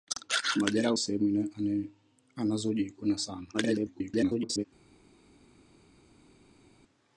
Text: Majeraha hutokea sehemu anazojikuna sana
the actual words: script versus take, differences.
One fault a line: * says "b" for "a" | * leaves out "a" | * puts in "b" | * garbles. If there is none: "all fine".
* leaves out "hutokea"
* garbles